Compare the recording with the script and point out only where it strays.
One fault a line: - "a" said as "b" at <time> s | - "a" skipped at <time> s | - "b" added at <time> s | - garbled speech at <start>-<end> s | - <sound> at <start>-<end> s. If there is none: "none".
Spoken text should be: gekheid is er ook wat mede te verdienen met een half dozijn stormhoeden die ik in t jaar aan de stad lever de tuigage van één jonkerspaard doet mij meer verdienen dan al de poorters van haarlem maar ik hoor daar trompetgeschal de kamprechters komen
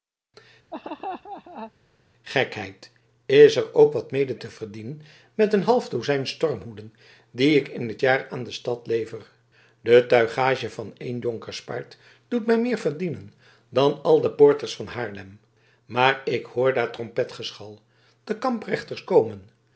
- laugh at 0.7-1.7 s